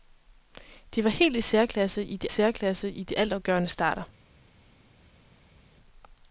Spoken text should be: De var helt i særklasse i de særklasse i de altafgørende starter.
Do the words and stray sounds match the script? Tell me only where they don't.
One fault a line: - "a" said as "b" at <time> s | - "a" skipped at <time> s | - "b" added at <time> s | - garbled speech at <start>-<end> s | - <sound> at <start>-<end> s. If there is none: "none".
none